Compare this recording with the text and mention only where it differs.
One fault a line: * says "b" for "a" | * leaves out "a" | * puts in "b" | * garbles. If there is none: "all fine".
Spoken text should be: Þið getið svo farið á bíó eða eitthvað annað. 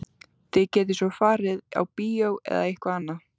all fine